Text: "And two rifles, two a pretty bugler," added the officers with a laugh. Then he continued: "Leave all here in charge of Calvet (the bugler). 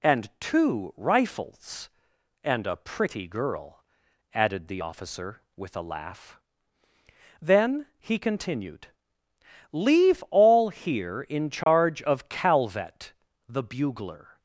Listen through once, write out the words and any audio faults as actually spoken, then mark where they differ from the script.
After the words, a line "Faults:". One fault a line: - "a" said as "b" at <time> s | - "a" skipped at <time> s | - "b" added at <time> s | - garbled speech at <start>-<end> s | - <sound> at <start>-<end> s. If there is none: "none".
"And two rifles, and a pretty girl," added the officer with a laugh. Then he continued: "Leave all here in charge of Calvet (the bugler).
Faults:
- "two" said as "and" at 2.4 s
- "bugler" said as "girl" at 3.3 s
- "officers" said as "officer" at 4.8 s
- dropout at 11.6-11.7 s